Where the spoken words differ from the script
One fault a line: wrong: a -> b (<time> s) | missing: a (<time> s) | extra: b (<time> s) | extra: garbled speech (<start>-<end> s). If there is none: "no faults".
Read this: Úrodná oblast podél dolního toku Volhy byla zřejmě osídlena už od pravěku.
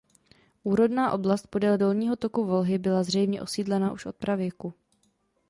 no faults